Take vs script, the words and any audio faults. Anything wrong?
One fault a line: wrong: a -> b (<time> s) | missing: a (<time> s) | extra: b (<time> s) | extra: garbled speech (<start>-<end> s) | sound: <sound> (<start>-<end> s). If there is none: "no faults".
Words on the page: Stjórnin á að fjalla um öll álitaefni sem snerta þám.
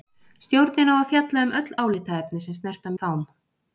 no faults